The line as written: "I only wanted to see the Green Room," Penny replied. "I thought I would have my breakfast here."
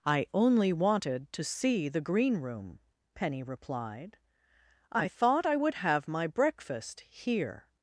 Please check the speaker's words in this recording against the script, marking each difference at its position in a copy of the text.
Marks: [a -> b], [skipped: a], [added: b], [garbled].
"I only wanted to see the Green Room," Penny replied. "I thought I would have my breakfast here."